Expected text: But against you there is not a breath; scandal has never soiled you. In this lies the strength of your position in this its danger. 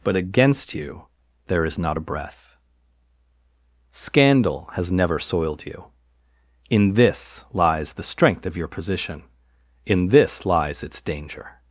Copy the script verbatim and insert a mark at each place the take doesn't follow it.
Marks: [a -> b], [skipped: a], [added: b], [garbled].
But against you there is not a breath; scandal has never soiled you. In this lies the strength of your position in this [added: lies] its danger.